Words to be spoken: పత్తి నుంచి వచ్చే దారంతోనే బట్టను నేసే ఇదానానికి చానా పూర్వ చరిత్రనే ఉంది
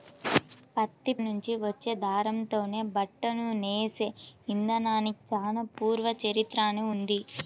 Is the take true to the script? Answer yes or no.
yes